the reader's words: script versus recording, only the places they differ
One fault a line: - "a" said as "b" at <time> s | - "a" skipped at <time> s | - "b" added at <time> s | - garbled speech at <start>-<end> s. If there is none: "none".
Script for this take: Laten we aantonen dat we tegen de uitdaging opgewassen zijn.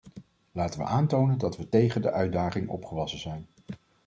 none